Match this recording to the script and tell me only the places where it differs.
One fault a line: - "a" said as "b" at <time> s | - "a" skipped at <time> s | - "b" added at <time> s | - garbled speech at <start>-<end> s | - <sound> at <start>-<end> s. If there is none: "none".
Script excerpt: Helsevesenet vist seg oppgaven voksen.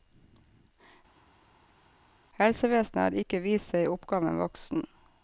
- "har ikke" added at 3.0 s